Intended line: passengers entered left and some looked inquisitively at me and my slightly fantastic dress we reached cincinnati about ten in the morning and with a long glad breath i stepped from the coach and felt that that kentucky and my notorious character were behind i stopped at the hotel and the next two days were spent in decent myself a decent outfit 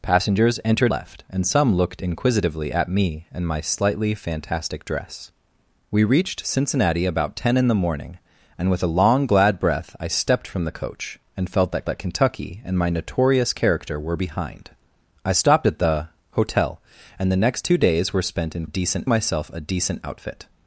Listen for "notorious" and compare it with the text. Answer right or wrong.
right